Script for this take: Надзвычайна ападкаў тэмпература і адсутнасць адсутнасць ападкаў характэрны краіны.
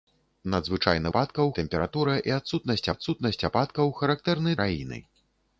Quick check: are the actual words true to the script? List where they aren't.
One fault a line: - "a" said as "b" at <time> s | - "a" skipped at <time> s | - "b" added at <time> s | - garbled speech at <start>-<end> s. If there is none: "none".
none